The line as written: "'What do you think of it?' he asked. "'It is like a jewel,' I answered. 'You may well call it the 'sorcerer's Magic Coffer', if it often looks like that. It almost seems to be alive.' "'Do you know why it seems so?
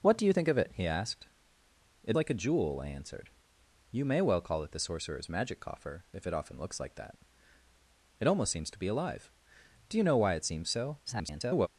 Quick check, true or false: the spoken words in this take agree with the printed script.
false